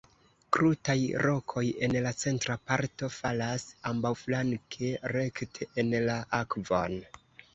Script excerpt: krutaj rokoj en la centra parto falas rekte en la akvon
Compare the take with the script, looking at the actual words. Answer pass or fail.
fail